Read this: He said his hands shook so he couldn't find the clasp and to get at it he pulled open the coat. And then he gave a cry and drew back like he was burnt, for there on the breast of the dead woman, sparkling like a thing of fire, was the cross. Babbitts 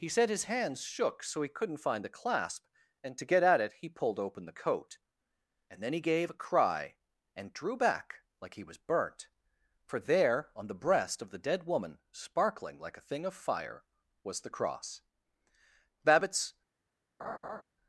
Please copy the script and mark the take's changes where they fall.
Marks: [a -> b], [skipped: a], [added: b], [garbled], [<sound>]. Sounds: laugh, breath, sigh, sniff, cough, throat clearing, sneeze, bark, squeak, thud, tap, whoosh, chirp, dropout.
He said his hands shook so he couldn't find the clasp and to get at it he pulled open the coat. And then he gave a cry and drew back like he was burnt, for there on the breast of the dead woman, sparkling like a thing of fire, was the cross. Babbitts [laugh]